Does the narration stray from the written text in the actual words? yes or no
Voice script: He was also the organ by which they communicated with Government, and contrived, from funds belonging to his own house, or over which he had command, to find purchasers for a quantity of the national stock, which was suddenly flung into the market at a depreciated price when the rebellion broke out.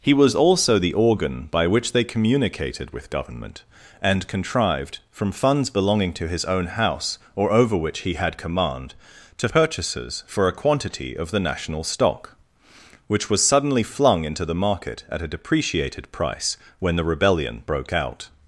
yes